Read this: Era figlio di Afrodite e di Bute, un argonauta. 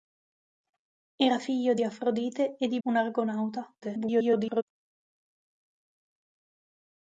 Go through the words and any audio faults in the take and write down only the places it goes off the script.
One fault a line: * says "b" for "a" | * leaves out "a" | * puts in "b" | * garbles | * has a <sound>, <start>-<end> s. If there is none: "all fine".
* leaves out "Bute"
* garbles